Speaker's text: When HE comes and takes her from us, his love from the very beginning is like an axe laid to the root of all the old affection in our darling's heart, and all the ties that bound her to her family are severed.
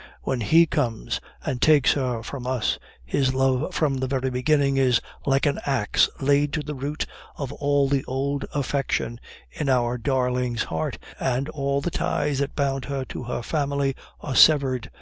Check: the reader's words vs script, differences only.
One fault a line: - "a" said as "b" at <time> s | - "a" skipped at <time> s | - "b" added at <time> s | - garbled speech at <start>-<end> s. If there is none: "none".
none